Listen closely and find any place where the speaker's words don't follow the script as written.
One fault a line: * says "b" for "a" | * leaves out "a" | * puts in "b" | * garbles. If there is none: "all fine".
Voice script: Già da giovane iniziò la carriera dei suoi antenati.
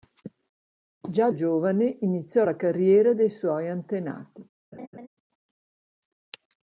* leaves out "da"